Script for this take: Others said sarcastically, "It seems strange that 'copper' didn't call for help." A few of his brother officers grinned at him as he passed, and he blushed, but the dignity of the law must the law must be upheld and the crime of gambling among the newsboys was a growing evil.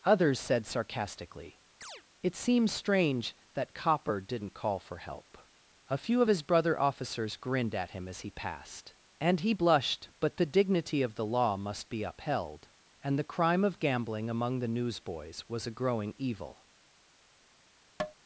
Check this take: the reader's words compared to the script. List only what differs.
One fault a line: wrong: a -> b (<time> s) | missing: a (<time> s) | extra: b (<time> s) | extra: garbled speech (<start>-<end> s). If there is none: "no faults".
missing: the law must (11.9 s)